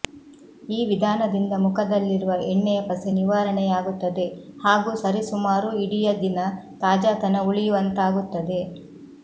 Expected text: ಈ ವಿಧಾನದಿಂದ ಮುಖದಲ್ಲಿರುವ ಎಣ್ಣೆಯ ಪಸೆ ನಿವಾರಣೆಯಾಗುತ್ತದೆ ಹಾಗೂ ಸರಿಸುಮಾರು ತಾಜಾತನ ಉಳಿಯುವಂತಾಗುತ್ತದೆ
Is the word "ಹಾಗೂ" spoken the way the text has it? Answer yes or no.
yes